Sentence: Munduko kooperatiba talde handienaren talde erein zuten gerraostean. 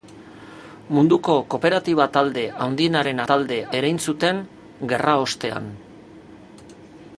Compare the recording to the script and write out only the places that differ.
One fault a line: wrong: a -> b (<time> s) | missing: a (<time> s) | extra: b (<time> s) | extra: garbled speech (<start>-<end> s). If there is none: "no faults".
no faults